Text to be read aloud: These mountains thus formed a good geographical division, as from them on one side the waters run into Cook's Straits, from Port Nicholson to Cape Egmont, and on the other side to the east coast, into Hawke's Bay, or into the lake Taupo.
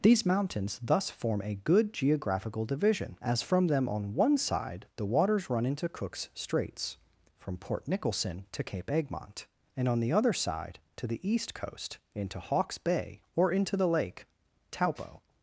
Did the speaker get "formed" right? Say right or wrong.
wrong